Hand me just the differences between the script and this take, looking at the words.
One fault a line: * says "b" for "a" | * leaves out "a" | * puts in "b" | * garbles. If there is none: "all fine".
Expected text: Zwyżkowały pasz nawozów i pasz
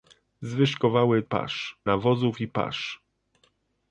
all fine